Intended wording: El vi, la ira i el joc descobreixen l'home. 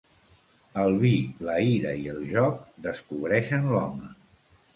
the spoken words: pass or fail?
pass